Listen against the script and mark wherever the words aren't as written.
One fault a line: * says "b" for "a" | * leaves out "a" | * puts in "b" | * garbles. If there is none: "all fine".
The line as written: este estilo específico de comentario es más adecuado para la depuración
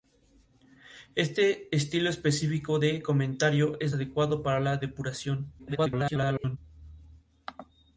* leaves out "más"
* garbles